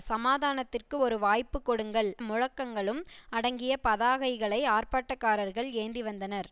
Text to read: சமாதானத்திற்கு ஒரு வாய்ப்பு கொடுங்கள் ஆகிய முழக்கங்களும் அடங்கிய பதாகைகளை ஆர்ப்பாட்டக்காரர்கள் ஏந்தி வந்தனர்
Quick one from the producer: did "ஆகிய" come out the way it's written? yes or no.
no